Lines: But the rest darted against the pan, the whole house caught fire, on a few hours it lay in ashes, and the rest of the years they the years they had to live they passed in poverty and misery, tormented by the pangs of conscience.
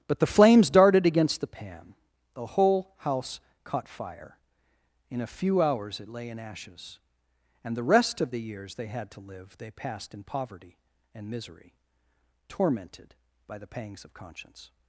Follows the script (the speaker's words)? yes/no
no